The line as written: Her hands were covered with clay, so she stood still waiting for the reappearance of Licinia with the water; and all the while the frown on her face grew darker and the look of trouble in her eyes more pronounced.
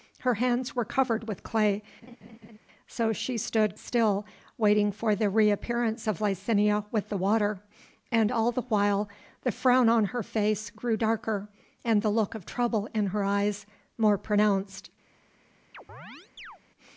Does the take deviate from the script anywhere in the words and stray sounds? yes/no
yes